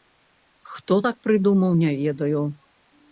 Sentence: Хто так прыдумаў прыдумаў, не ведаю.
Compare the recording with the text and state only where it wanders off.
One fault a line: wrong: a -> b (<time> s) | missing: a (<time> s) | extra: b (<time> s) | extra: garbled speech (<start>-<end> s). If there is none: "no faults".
missing: прыдумаў (1.7 s)